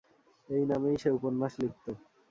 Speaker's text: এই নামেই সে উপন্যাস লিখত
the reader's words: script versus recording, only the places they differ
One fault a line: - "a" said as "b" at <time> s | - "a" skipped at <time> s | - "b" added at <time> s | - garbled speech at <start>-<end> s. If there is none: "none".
none